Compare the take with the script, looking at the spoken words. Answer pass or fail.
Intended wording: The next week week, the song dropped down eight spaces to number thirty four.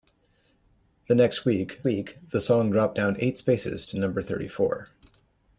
pass